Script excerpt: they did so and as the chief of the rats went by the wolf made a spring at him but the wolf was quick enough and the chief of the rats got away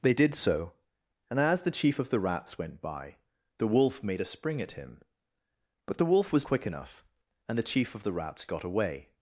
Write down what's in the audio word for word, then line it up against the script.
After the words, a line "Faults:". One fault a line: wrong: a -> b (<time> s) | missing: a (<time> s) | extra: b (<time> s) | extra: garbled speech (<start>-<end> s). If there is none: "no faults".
they did so and as the chief of the rats went by the wolf made a spring at him but the wolf was quick enough and the chief of the rats got away
Faults:
no faults